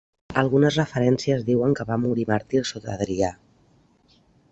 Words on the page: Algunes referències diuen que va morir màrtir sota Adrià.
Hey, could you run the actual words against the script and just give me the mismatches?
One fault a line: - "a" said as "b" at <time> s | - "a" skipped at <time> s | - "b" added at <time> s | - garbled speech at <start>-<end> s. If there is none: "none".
none